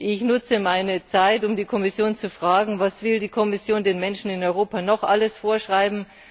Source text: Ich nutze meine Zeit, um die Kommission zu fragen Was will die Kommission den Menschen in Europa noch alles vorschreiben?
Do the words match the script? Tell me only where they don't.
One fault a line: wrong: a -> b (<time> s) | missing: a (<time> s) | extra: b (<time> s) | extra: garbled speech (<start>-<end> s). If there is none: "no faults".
no faults